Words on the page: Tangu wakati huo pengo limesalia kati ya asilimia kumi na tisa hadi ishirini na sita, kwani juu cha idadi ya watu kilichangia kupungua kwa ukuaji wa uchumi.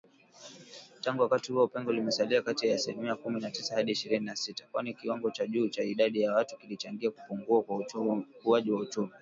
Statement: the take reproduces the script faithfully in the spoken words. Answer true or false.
false